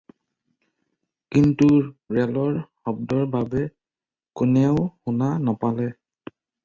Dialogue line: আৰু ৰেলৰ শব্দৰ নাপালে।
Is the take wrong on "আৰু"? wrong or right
wrong